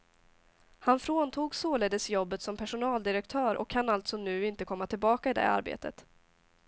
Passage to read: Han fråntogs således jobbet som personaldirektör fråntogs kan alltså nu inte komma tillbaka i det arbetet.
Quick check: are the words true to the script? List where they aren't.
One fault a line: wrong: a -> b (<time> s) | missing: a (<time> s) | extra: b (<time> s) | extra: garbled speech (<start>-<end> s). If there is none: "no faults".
wrong: fråntogs -> och (3.5 s)